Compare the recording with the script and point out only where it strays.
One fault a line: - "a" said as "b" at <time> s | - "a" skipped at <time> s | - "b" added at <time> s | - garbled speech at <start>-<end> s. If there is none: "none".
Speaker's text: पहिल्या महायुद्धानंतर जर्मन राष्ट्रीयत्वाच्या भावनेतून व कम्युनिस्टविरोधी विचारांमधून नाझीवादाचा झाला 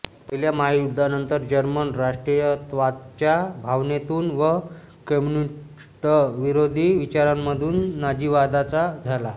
none